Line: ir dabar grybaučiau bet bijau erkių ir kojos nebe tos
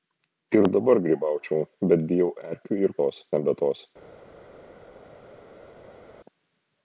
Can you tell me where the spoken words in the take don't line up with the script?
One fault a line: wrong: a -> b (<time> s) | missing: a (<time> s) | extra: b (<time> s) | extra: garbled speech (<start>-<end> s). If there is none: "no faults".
wrong: kojos -> tos (3.0 s)